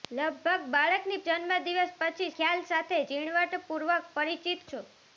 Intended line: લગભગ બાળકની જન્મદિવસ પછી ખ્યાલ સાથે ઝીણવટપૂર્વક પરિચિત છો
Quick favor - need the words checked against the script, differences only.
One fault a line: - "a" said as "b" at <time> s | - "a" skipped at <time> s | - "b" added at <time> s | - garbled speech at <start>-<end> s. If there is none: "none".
none